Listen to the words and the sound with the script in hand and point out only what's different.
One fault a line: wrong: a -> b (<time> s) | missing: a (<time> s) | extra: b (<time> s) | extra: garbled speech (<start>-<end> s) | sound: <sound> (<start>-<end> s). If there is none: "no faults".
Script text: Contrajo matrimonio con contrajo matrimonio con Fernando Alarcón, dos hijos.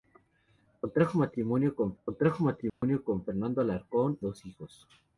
sound: dropout (2.7-2.8 s)